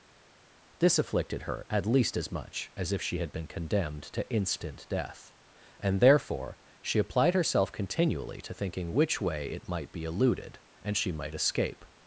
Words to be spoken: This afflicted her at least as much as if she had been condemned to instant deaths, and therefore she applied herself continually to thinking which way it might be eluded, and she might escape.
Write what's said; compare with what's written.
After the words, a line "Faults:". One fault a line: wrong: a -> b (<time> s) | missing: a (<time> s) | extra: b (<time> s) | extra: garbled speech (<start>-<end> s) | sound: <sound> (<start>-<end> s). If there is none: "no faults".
This afflicted her at least as much as if she had been condemned to instant death, and therefore she applied herself continually to thinking which way it might be eluded, and she might escape.
Faults:
wrong: deaths -> death (4.9 s)